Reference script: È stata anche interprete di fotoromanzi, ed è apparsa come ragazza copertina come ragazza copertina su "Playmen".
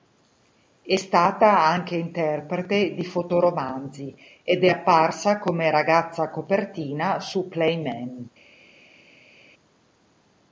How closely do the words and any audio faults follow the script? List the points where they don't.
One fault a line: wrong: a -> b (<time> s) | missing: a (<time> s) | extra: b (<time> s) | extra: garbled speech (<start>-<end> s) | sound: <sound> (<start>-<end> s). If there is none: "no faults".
missing: come ragazza copertina (7.2 s)